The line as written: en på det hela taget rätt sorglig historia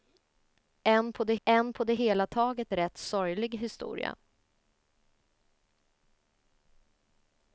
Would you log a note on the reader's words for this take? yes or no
yes